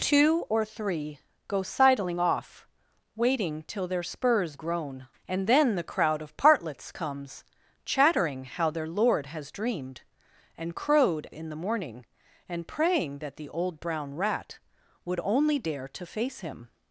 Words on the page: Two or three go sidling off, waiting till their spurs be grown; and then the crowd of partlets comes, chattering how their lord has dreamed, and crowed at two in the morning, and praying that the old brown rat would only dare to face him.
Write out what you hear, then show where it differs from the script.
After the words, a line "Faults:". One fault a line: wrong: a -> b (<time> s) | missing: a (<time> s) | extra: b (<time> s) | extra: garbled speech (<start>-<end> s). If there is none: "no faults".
Two or three go sidling off, waiting till their spurs grown; and then the crowd of partlets comes, chattering how their lord has dreamed, and crowed in the morning, and praying that the old brown rat would only dare to face him.
Faults:
missing: be (4.5 s)
missing: at two (11.3 s)